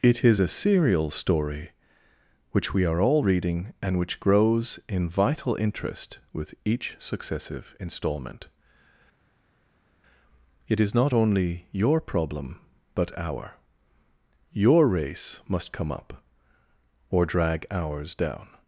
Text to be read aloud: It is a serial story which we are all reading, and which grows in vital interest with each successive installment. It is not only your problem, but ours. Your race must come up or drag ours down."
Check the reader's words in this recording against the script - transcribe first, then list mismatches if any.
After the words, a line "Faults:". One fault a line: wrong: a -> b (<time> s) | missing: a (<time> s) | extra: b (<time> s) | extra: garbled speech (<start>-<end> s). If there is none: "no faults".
It is a serial story which we are all reading, and which grows in vital interest with each successive installment. It is not only your problem, but our. Your race must come up or drag ours down."
Faults:
wrong: ours -> our (13.2 s)